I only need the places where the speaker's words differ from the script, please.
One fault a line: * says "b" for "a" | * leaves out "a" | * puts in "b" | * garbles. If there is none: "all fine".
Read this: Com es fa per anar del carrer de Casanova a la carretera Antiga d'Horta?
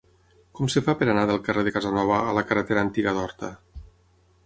all fine